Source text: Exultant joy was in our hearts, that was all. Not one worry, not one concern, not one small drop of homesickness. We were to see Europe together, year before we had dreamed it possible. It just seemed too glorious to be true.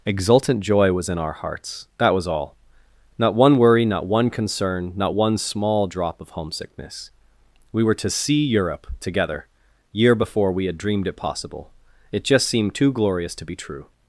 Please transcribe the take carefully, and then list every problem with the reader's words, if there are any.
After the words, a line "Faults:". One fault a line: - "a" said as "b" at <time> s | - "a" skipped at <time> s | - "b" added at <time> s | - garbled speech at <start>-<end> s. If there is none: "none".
Exultant joy was in our hearts, that was all. Not one worry, not one concern, not one small drop of homesickness. We were to see Europe together, year before we had dreamed it possible. It just seemed too glorious to be true.
Faults:
none